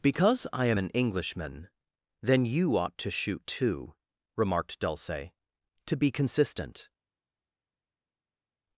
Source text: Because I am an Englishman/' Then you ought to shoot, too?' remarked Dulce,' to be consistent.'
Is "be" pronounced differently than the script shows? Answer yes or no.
no